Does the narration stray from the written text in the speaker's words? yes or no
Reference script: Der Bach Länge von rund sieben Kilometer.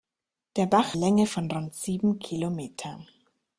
no